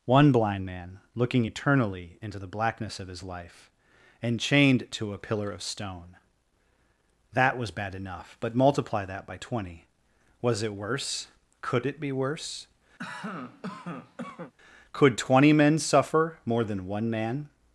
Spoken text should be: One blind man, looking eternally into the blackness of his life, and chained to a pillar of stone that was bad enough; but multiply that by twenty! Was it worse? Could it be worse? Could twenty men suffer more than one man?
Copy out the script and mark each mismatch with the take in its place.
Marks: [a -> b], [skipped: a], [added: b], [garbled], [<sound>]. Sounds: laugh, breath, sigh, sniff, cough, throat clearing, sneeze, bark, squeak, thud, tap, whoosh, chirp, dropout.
One blind man, looking eternally into the blackness of his life, and chained to a pillar of stone that was bad enough; but multiply that by twenty! Was it worse? Could it be worse? [cough] Could twenty men suffer more than one man?